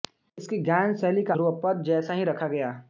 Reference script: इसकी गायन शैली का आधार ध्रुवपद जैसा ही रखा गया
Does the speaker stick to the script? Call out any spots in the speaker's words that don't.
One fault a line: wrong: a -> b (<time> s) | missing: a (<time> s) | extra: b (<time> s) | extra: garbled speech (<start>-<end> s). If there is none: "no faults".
missing: आधार (1.4 s)